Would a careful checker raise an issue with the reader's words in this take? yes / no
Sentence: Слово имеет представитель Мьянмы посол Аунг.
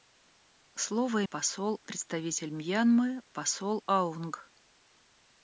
yes